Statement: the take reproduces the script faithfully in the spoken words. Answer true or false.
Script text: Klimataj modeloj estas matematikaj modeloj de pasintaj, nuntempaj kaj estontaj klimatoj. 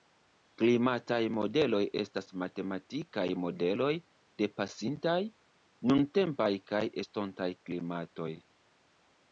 true